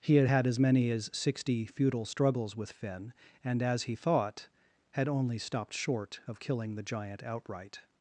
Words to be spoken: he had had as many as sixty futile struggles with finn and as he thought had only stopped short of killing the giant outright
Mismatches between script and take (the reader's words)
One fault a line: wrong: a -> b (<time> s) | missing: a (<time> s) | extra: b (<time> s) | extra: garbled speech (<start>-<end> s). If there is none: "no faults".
no faults